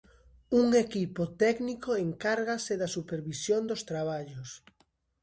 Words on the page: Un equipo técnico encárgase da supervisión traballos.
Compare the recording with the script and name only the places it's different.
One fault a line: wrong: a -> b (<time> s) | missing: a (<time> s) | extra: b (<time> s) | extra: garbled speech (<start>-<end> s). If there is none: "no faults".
extra: dos (3.7 s)